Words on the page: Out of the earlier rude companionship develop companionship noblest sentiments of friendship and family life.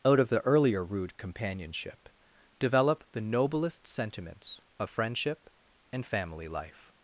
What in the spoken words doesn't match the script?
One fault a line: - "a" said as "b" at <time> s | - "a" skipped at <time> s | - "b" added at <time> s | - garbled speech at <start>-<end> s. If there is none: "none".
- "companionship" said as "the" at 3.1 s